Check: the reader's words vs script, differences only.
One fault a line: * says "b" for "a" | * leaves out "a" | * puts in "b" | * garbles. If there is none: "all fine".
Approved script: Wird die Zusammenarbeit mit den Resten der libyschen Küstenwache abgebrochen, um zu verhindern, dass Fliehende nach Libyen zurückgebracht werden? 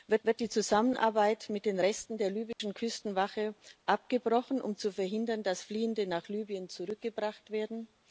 * puts in "wird"